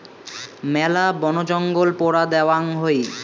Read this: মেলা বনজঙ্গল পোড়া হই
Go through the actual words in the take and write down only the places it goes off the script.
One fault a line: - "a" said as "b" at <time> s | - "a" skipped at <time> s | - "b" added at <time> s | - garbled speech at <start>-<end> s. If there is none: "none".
- "দ্যাওয়াং" added at 2.3 s